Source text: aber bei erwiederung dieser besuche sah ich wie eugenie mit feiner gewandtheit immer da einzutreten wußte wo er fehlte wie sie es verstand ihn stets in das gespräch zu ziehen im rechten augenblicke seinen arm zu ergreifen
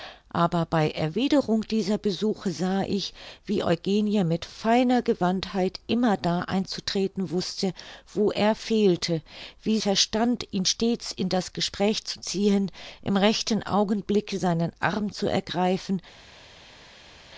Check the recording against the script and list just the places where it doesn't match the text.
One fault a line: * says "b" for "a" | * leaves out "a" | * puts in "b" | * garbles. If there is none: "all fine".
* leaves out "sie es"